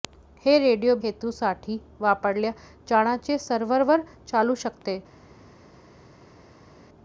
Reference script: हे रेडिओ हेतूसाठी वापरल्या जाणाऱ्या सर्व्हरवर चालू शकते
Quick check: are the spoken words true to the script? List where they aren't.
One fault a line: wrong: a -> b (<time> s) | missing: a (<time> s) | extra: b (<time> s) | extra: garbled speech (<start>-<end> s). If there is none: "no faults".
no faults